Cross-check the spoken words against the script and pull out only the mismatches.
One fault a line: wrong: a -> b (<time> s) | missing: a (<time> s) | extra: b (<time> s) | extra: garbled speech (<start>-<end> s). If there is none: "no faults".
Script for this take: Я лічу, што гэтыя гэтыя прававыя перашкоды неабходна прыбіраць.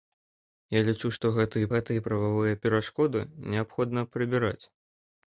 no faults